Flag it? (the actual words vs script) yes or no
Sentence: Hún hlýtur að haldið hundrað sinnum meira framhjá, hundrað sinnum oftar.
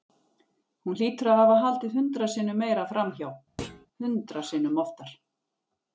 yes